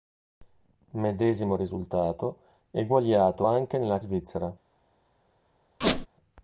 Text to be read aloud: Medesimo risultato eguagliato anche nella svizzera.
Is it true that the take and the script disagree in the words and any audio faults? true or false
true